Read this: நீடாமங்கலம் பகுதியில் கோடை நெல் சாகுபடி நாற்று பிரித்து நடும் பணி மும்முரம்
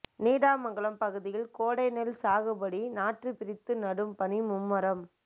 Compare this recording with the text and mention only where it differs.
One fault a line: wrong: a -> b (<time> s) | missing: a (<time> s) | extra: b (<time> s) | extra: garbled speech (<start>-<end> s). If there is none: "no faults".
no faults